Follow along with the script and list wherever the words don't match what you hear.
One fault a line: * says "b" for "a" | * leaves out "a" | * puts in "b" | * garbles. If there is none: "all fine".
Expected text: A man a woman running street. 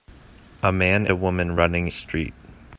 all fine